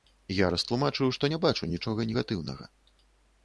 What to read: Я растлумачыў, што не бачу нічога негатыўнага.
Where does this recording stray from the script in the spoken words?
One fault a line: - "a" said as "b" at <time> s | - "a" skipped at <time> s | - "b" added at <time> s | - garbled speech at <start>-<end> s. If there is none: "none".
none